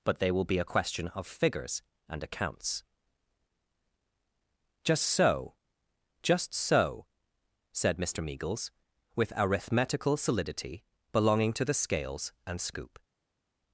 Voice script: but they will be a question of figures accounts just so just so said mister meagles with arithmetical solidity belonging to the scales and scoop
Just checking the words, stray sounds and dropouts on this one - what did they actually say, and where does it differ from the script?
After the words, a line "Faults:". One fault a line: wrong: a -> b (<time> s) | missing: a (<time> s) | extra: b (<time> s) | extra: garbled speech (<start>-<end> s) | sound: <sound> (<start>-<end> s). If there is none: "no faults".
but they will be a question of figures and accounts just so just so said mister meagles with arithmetical solidity belonging to the scales and scoop
Faults:
extra: and (2.1 s)